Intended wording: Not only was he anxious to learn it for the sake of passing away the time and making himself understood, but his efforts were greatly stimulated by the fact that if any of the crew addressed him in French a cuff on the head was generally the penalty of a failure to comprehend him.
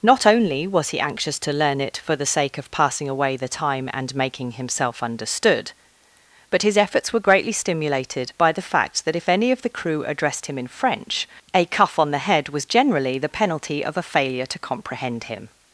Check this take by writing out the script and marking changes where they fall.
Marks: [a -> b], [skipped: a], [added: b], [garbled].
Not only was he anxious to learn it for the sake of passing away the time and making himself understood, but his efforts were greatly stimulated by the fact that if any of the crew addressed him in French a cuff on the head was generally the penalty of a failure to comprehend him.